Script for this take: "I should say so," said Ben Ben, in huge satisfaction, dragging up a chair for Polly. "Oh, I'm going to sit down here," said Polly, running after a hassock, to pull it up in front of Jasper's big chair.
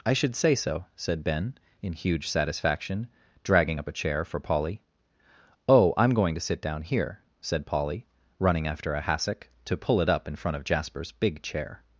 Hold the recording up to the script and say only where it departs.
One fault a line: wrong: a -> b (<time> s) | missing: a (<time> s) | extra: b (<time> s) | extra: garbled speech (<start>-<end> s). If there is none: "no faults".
missing: Ben (1.5 s)